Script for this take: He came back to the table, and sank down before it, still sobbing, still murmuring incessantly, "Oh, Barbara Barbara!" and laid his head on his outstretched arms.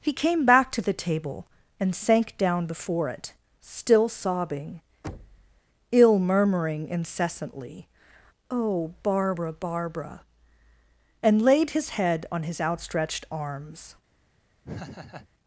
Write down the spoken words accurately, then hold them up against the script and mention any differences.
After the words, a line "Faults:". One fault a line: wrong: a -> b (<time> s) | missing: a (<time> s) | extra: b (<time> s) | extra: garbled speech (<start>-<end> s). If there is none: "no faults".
He came back to the table, and sank down before it, still sobbing, ill murmuring incessantly, "Oh, Barbara Barbara!" and laid his head on his outstretched arms.
Faults:
wrong: still -> ill (5.9 s)